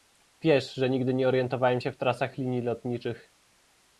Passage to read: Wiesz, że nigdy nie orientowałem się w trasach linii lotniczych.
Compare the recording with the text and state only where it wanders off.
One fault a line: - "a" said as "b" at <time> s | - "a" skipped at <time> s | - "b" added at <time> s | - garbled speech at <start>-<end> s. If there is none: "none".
none